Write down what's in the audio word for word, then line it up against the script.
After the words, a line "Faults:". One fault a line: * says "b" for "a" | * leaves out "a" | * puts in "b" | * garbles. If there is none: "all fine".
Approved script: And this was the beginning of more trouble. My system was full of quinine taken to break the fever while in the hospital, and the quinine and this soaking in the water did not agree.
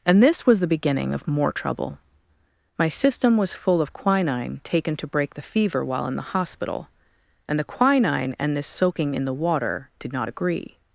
And this was the beginning of more trouble. My system was full of quinine taken to break the fever while in the hospital, and the quinine and this soaking in the water did not agree.
Faults:
all fine